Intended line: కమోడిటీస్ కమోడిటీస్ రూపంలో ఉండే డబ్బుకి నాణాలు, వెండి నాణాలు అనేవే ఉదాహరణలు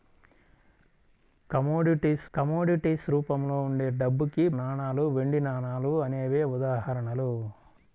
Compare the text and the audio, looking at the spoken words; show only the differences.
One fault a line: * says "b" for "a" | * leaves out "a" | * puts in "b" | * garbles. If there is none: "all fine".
all fine